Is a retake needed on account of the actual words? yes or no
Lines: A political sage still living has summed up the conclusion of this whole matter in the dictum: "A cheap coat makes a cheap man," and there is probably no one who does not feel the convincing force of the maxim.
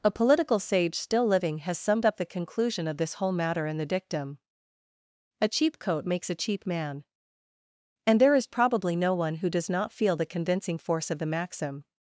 no